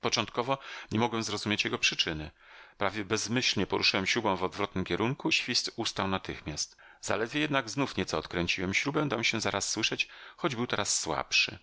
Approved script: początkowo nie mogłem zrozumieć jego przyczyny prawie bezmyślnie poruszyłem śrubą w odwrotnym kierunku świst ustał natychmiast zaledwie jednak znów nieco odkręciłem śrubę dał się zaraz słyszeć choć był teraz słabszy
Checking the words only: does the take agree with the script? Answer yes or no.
yes